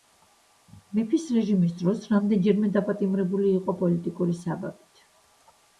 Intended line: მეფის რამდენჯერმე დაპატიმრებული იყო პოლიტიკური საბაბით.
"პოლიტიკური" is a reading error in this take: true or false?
false